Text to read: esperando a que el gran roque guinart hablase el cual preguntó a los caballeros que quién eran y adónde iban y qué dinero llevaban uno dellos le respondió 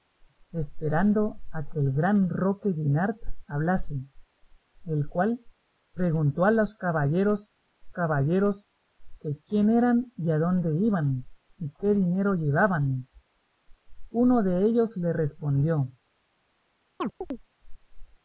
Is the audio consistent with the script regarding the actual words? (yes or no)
no